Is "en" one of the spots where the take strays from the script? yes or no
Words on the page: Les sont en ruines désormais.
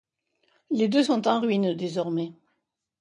no